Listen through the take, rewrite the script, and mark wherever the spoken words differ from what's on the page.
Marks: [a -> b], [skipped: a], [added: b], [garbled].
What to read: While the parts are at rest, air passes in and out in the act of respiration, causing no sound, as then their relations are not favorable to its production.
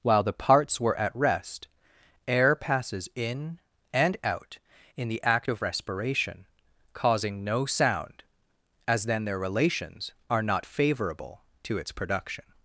While the parts [are -> were] at rest, air passes in and out in the act of respiration, causing no sound, as then their relations are not favorable to its production.